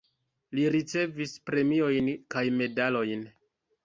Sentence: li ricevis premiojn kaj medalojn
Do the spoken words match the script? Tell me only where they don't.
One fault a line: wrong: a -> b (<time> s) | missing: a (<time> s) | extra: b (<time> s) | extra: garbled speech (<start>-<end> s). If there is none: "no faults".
no faults